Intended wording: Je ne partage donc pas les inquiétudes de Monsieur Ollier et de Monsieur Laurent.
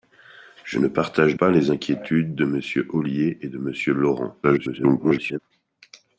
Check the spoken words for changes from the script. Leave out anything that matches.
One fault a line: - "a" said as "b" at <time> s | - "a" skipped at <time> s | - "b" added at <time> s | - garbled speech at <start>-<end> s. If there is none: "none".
- "donc" skipped at 1.4 s
- garbled speech at 4.4-5.4 s